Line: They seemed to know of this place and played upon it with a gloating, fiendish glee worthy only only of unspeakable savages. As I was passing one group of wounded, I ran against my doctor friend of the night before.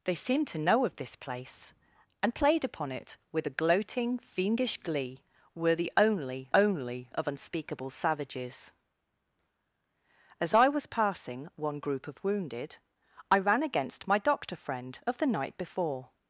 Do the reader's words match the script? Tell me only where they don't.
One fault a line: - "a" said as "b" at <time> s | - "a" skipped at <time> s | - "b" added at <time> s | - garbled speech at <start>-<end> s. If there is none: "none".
none